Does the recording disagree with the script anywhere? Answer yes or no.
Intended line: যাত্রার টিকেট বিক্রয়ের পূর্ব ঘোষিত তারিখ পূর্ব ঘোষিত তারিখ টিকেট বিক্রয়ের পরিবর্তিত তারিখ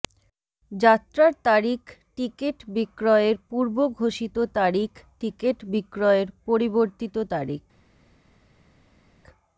yes